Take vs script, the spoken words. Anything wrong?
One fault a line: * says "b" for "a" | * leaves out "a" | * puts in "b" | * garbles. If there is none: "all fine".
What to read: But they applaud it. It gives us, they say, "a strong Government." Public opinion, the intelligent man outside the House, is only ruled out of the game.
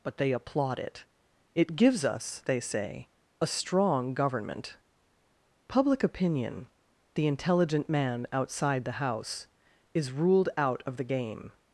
* leaves out "only"